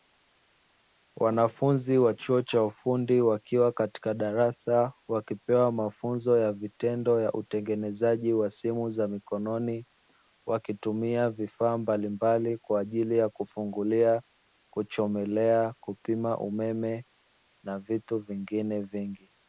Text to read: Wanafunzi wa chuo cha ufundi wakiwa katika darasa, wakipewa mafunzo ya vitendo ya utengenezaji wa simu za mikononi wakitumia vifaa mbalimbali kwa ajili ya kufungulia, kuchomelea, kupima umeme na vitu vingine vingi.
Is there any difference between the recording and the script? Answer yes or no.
no